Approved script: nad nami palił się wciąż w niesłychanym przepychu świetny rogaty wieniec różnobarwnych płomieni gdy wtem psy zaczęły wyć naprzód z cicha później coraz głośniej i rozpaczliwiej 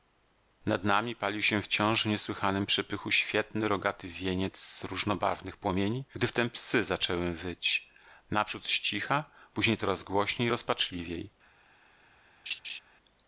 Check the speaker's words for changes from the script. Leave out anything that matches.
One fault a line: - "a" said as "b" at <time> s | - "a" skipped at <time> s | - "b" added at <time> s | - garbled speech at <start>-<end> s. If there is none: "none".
none